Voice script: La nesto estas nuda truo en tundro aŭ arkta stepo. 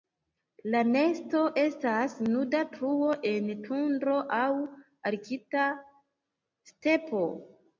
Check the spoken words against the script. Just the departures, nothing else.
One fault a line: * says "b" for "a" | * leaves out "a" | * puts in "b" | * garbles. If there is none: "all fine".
all fine